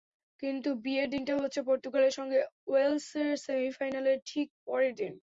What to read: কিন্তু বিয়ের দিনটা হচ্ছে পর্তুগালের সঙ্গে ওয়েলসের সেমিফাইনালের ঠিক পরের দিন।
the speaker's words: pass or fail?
pass